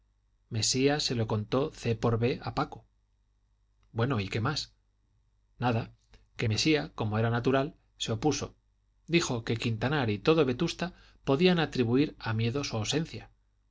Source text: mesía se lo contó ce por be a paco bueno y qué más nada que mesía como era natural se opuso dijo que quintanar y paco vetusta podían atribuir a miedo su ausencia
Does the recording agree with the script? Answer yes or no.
no